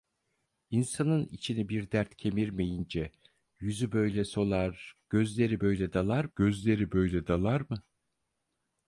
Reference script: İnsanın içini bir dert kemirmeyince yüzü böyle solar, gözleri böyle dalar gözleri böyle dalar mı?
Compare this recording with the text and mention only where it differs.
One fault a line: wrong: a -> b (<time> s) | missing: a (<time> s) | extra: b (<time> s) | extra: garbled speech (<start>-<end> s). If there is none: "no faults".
no faults